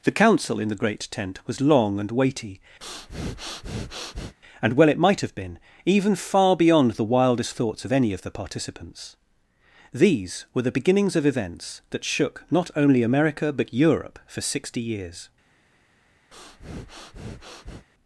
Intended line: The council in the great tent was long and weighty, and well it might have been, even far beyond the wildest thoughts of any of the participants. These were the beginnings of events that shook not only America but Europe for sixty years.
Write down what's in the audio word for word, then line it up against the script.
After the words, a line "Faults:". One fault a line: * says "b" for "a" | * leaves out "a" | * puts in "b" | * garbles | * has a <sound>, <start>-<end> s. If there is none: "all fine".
The council in the great tent was long and weighty, and well it might have been, even far beyond the wildest thoughts of any of the participants. These were the beginnings of events that shook not only America but Europe for sixty years.
Faults:
* has a breath, 2.8-4.3 s
* has a breath, 16.3-17.9 s